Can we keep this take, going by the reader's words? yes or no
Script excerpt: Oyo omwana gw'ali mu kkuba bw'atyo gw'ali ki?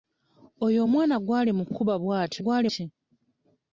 yes